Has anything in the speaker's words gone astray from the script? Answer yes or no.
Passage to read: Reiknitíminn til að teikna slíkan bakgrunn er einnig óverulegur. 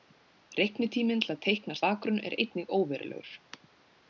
yes